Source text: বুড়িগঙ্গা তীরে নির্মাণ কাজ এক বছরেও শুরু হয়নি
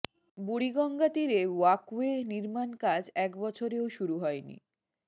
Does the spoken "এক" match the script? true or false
true